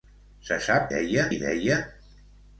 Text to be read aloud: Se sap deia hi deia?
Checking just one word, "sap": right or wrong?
right